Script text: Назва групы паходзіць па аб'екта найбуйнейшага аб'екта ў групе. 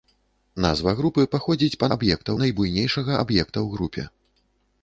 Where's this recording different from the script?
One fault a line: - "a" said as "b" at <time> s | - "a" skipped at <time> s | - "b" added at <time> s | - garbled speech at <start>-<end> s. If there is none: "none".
none